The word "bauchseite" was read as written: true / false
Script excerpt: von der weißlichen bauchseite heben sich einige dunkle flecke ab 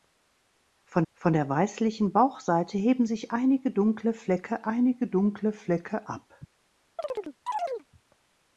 true